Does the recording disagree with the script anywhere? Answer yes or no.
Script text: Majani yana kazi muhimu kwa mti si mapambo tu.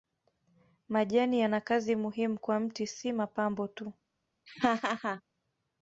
no